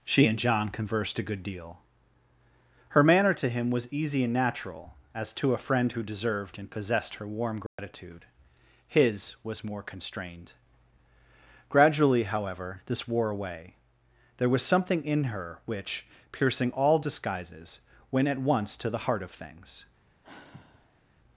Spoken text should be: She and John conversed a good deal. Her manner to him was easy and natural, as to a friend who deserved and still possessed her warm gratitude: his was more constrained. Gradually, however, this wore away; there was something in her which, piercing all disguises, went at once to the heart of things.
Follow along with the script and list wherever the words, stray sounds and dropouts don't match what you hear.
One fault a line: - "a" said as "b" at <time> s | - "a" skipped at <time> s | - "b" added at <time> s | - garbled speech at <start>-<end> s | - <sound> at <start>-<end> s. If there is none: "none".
- "still" skipped at 6.7 s
- dropout at 7.7-7.8 s
- sigh at 20.2-21.0 s